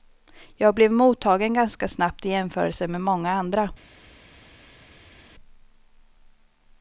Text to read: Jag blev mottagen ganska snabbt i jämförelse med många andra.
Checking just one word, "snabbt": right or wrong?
right